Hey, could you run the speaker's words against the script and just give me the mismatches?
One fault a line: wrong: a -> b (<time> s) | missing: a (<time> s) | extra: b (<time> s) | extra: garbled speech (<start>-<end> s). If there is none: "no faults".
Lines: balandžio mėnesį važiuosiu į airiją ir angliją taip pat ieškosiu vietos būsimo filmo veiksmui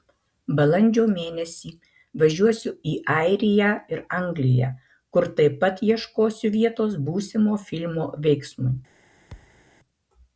extra: kur (5.2 s)